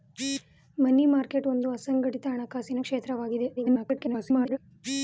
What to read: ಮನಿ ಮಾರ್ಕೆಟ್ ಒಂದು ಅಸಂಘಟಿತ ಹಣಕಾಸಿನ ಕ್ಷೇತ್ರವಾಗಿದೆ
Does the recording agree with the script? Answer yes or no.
no